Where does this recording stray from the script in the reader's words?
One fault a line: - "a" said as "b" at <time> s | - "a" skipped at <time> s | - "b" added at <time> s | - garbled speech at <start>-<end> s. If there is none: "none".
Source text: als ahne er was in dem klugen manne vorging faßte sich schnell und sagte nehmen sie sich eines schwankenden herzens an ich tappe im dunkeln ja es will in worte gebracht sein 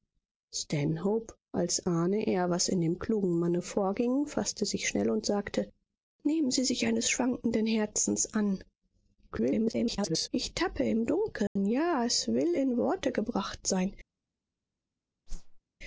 - garbled speech at 9.3-10.3 s